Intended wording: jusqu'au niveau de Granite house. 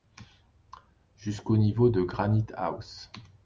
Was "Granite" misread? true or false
false